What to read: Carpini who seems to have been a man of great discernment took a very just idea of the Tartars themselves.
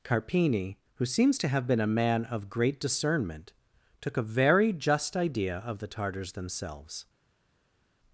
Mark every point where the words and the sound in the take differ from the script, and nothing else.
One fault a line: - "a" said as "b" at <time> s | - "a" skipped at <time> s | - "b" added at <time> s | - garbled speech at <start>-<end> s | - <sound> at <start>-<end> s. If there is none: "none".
none